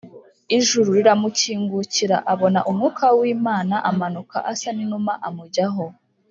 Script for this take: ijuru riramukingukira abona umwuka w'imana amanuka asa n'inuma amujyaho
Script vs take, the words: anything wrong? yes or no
no